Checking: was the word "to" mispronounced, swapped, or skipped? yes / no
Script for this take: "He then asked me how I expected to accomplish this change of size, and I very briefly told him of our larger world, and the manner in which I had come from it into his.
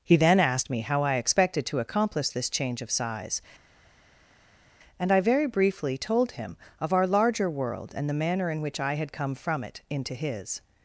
no